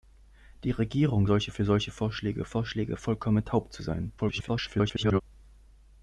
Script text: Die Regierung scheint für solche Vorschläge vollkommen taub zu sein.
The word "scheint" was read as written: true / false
false